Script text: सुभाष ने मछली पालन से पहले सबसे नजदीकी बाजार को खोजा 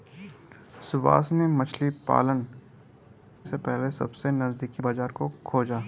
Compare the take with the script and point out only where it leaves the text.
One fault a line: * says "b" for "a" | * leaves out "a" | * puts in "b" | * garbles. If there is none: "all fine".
all fine